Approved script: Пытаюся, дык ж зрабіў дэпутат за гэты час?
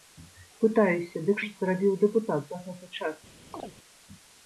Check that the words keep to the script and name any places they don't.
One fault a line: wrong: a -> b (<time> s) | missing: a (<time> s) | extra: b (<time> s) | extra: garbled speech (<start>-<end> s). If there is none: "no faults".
no faults